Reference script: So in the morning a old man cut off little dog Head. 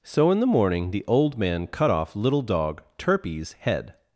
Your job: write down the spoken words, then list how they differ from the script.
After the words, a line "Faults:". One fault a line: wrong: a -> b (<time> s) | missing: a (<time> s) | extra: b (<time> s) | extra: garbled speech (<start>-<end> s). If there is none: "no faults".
So in the morning the old man cut off little dog Turpie's head.
Faults:
wrong: a -> the (0.9 s)
extra: Turpie's (3.0 s)